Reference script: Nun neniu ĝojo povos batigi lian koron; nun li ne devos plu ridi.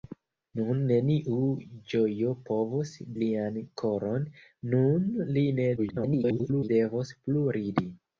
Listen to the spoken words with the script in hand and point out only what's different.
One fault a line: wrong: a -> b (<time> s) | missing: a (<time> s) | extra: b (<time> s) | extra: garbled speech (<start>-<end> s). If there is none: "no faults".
missing: batigi (2.9 s)
extra: garbled speech (5.8-6.7 s)